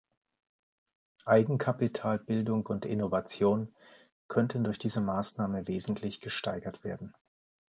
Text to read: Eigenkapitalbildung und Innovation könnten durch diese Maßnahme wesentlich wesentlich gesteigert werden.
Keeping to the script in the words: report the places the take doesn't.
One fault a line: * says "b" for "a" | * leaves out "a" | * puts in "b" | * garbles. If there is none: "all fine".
* leaves out "wesentlich"